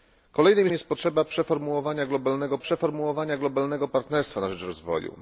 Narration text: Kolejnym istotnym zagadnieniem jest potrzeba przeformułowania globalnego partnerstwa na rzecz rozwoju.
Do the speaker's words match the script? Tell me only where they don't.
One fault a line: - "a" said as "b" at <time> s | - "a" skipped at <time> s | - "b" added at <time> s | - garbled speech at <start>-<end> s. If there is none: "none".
- "istotnym zagadnieniem jest potrzeba" said as "jest potrzeba przeformułowania globalnego" at 0.7 s